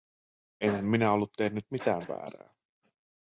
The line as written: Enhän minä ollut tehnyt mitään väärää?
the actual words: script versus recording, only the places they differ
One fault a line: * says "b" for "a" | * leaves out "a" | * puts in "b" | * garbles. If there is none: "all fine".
all fine